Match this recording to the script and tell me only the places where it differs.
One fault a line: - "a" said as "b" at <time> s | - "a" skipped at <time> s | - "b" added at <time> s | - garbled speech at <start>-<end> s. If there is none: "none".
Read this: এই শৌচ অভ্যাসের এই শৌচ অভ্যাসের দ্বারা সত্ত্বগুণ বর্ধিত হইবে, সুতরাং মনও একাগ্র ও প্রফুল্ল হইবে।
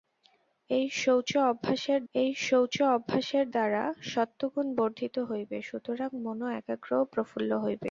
none